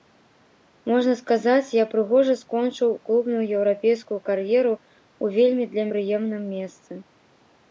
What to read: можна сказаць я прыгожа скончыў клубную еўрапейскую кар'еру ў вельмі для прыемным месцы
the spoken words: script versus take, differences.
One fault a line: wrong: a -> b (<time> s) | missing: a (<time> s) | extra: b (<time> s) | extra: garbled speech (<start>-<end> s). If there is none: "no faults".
no faults